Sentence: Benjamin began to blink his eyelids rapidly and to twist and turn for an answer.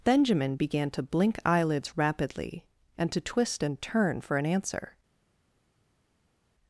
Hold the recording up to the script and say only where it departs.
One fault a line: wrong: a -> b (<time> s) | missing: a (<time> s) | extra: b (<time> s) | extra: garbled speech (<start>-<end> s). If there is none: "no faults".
missing: his (1.4 s)